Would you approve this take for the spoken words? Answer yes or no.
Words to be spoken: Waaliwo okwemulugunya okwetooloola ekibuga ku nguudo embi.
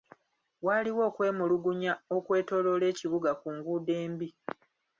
yes